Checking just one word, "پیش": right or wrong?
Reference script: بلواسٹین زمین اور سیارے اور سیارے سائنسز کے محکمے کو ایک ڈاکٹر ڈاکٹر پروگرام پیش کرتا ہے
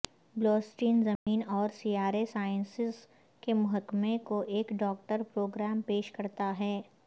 right